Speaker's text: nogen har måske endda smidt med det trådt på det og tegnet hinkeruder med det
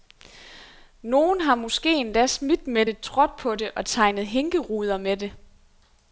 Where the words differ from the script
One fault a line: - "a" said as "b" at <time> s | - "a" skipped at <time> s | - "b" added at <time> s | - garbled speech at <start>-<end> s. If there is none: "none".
none